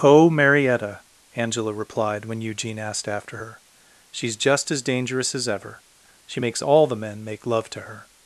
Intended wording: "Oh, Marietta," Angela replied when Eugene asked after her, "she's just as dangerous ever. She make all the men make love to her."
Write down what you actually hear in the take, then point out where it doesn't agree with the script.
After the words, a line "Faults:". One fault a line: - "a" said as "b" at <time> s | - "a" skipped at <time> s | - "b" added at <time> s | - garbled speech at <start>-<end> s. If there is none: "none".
"Oh, Marietta," Angela replied when Eugene asked after her, "she's just as dangerous as ever. She makes all the men make love to her."
Faults:
- "as" added at 5.3 s
- "make" said as "makes" at 6.4 s